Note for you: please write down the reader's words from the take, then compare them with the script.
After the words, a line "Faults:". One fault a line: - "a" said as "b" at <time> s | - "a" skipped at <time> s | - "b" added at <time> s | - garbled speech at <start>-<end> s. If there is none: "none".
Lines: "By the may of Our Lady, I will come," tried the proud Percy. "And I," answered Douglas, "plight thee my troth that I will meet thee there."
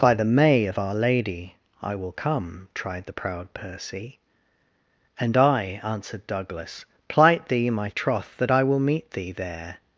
"By the may of Our Lady, I will come," tried the proud Percy. "And I," answered Douglas, "plight thee my troth that I will meet thee there."
Faults:
none